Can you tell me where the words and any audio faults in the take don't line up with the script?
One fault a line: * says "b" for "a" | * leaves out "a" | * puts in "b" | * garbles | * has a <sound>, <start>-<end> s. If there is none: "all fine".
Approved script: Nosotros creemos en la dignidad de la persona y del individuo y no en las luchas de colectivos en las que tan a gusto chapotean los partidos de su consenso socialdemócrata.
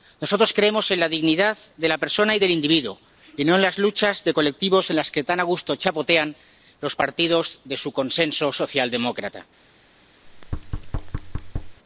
* has a thud, 10.2-11.8 s